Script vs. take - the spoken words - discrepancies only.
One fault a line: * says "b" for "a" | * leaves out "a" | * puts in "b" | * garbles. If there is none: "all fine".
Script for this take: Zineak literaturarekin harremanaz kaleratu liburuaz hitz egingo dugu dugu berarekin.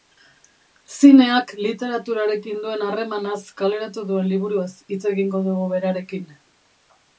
* puts in "duen"
* puts in "duen"
* leaves out "dugu"